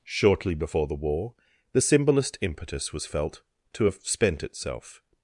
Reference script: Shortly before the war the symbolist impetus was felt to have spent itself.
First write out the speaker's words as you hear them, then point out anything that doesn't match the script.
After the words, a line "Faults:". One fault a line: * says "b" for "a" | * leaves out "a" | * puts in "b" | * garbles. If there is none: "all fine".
Shortly before the war the symbolist impetus was felt to have spent itself.
Faults:
all fine